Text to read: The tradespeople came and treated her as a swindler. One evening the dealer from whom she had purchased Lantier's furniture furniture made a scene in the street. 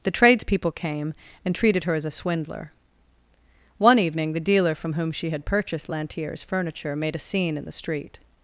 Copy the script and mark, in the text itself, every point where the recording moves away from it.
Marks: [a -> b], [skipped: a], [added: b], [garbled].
The tradespeople came and treated her as a swindler. One evening the dealer from whom she had purchased Lantier's furniture [skipped: furniture] made a scene in the street.